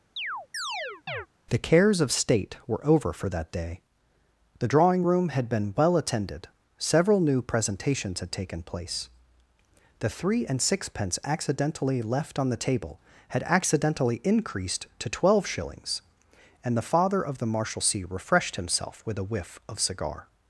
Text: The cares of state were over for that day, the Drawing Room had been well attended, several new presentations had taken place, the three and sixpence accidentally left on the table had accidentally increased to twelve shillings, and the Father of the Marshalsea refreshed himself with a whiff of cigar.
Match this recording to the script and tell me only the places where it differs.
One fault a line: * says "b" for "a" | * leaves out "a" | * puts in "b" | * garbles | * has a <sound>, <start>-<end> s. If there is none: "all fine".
* has a chirp, 0.2-1.3 s